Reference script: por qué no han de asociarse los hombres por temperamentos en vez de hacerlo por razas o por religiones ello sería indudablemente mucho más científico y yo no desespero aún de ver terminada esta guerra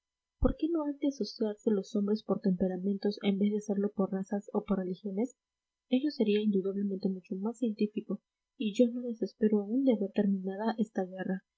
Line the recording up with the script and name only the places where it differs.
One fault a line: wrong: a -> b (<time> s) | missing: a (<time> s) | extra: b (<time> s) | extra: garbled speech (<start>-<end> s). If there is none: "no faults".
no faults